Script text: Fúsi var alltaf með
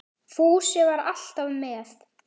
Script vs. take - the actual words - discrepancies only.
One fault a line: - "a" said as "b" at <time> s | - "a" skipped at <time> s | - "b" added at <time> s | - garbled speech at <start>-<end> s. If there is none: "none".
none